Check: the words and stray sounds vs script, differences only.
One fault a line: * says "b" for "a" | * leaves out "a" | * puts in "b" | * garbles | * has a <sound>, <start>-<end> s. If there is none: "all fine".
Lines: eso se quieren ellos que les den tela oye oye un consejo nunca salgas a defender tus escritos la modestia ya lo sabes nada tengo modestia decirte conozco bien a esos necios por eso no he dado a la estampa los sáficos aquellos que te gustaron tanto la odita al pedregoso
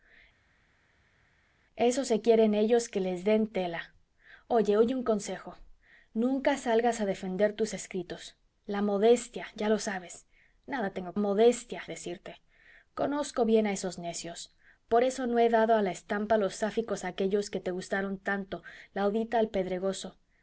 all fine